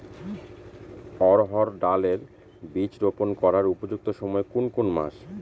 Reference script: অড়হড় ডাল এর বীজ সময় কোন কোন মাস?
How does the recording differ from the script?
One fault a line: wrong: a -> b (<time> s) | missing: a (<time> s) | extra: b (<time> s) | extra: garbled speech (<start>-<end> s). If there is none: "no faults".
extra: রোপন করার উপযুক্ত (3.0 s)